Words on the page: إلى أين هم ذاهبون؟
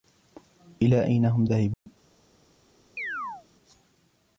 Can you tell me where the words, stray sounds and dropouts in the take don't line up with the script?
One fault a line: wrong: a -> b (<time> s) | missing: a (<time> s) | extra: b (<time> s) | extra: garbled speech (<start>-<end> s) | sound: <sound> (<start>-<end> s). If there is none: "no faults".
sound: dropout (1.7-1.9 s)
sound: chirp (3.0-3.5 s)